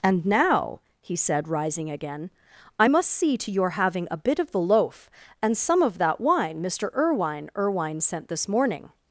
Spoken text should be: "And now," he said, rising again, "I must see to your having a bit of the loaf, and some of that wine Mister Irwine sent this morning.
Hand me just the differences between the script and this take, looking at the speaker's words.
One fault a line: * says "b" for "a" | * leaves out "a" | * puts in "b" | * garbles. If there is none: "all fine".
* puts in "Irwine"